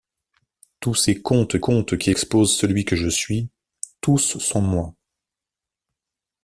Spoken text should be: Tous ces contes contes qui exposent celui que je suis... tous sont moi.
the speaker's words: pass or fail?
pass